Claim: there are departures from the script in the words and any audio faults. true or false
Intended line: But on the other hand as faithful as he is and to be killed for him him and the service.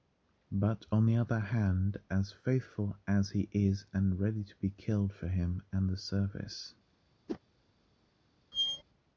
true